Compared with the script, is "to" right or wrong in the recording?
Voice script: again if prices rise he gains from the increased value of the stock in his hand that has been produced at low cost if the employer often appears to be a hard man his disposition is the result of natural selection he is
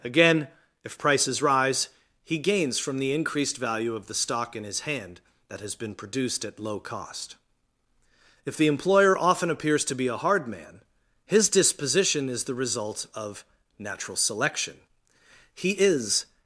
right